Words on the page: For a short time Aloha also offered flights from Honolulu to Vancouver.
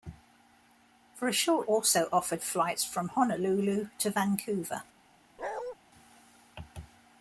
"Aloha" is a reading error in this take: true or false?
true